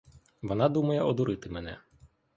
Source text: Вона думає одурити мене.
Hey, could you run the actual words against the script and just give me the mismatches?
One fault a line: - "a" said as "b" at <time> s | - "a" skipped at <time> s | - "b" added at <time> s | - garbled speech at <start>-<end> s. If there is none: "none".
none